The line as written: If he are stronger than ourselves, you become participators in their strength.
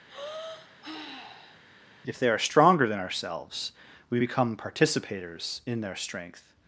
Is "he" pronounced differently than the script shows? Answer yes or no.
yes